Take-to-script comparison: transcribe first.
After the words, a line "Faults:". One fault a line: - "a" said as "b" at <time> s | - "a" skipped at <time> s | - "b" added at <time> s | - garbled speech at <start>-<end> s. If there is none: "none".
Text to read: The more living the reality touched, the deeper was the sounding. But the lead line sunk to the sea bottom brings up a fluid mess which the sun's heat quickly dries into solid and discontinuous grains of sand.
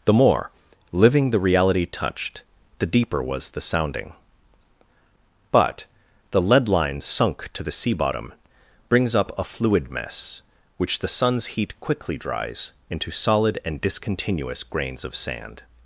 The more living the reality touched, the deeper was the sounding. But the lead line sunk to the sea bottom brings up a fluid mess which the sun's heat quickly dries into solid and discontinuous grains of sand.
Faults:
none